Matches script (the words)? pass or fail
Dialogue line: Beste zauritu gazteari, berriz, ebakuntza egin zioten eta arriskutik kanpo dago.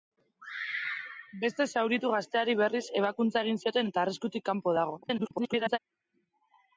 fail